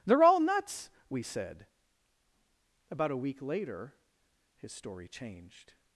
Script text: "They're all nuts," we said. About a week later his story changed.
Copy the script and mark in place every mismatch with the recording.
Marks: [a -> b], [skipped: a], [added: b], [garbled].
"They're all nuts," we said. About a week later his story changed.